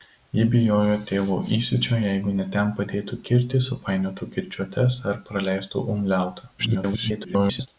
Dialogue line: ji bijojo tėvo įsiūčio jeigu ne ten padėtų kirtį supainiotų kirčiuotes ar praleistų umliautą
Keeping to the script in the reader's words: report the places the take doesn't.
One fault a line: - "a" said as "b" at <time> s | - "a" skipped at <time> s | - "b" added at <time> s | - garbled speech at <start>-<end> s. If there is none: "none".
- garbled speech at 6.6-7.7 s